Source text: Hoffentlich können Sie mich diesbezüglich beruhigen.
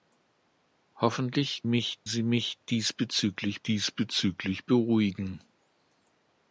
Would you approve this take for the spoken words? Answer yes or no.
no